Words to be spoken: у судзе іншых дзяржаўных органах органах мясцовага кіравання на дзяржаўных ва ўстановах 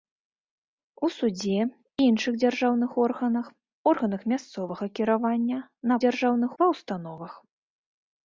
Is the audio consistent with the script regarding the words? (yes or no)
yes